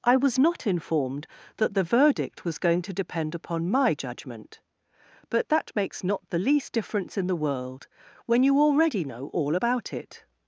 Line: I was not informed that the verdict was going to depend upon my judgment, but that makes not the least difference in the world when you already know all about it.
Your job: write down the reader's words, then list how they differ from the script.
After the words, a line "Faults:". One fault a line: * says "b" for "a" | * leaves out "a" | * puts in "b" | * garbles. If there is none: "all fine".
I was not informed that the verdict was going to depend upon my judgment, but that makes not the least difference in the world when you already know all about it.
Faults:
all fine